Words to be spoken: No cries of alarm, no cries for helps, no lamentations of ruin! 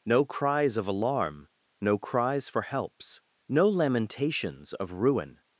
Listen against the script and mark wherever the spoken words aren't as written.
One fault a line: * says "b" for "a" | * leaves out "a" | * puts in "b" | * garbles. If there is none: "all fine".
all fine